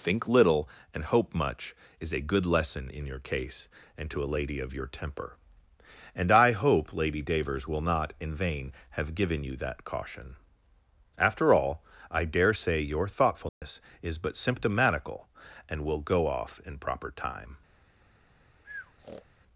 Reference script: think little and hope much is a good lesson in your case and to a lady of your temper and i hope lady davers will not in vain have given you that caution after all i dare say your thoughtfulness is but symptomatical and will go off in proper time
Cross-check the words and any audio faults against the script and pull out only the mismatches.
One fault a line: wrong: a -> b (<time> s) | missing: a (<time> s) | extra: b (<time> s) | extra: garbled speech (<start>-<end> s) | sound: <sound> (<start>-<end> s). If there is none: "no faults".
sound: dropout (13.5-13.6 s)
sound: breath (18.6-19.3 s)